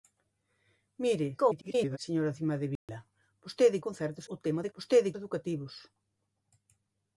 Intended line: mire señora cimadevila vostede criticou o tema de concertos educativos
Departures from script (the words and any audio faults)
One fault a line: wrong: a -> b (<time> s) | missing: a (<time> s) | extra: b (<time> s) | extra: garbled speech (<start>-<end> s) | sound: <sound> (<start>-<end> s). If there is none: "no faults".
extra: garbled speech (1.4-2.0 s)
sound: dropout (2.8-2.9 s)
wrong: criticou -> concertos (3.9 s)
wrong: concertos -> vostede (4.7 s)